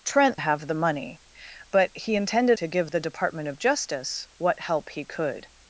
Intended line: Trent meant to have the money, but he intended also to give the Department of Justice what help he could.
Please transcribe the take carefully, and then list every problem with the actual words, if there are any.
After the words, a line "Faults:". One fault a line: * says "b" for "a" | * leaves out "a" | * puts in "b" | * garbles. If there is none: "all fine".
Trent have the money, but he intended to give the Department of Justice what help he could.
Faults:
* leaves out "meant to"
* leaves out "also"